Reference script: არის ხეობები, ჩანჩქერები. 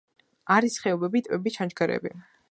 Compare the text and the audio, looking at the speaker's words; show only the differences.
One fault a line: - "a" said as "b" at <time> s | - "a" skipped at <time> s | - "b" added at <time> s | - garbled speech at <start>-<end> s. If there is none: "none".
- "ტბები" added at 1.3 s